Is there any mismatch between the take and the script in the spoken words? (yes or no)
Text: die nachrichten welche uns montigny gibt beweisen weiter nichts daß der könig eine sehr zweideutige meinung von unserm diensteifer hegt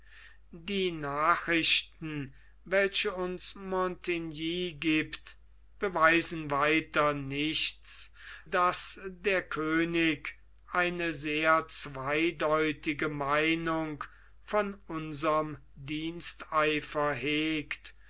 no